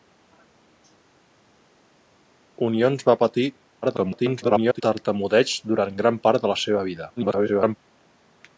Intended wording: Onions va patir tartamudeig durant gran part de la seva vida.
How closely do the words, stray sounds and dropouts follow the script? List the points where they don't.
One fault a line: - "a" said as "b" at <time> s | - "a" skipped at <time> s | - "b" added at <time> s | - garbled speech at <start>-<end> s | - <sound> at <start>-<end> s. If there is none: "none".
- garbled speech at 3.8-4.8 s
- garbled speech at 7.2-7.8 s